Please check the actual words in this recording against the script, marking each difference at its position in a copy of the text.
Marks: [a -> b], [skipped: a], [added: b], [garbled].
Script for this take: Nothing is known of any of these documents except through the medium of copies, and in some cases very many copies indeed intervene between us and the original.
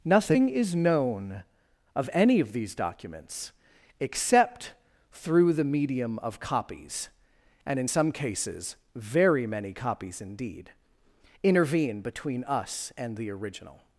Nothing is known of any of these documents except through the medium of copies, and in some cases very many copies indeed intervene between us and the original.